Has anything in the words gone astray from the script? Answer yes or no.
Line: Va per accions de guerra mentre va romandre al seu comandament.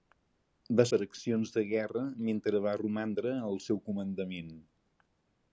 no